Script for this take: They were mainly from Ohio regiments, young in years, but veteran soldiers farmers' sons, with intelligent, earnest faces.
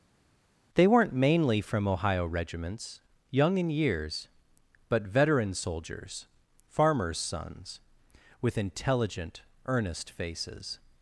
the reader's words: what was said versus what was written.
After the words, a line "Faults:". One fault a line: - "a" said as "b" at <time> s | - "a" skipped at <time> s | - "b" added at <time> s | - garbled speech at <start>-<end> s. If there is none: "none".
They weren't mainly from Ohio regiments, young in years, but veteran soldiers farmers' sons, with intelligent, earnest faces.
Faults:
- "were" said as "weren't" at 0.9 s